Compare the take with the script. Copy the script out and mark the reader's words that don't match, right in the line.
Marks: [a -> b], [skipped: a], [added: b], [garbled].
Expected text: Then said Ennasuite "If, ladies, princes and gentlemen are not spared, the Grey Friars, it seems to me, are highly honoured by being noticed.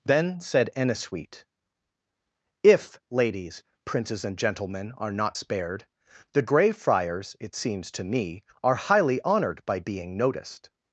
Then said Ennasuite "If, ladies, princes and gentlemen are not spared, the Grey Friars, it seems to me, are highly honoured by being noticed.